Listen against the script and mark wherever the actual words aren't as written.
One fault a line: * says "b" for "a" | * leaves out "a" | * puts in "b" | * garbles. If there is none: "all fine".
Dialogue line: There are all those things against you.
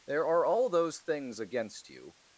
all fine